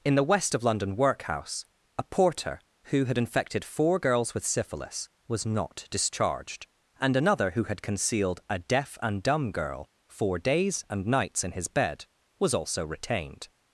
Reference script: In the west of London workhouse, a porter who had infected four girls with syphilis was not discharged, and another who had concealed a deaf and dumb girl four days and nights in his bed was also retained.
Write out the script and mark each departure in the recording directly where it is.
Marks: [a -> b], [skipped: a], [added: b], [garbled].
In the west of London workhouse, a porter who had infected four girls with syphilis was not discharged, and another who had concealed a deaf and dumb girl four days and nights in his bed was also retained.